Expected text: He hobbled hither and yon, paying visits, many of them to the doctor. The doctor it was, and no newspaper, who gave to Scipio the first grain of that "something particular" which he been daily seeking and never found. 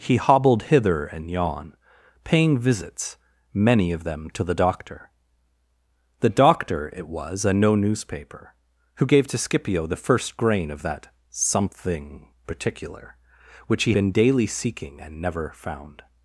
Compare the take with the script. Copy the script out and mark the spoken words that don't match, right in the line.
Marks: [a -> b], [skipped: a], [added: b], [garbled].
He hobbled hither and yon, paying visits, many of them to the doctor. The doctor it was, and no newspaper, who gave to Scipio the first grain of that "something particular" which he been daily seeking and never found.